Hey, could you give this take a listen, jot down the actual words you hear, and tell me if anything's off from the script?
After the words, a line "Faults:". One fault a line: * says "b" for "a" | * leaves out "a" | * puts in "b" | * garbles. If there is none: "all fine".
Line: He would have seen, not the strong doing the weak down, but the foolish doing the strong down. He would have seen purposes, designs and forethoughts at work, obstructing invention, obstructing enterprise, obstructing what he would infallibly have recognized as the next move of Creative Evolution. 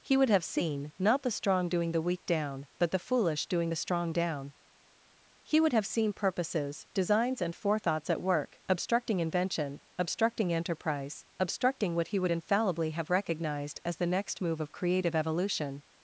He would have seen, not the strong doing the weak down, but the foolish doing the strong down. He would have seen purposes, designs and forethoughts at work, obstructing invention, obstructing enterprise, obstructing what he would infallibly have recognized as the next move of Creative Evolution.
Faults:
all fine